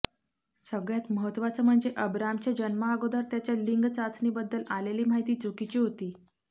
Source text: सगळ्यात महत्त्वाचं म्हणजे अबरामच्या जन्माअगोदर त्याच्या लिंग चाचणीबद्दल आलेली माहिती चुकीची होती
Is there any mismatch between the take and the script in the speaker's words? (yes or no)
no